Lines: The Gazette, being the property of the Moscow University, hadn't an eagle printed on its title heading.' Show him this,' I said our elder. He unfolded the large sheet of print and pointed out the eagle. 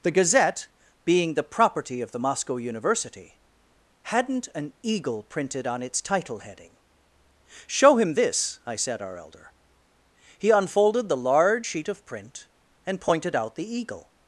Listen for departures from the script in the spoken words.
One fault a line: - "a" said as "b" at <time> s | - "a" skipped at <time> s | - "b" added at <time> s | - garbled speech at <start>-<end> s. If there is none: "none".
none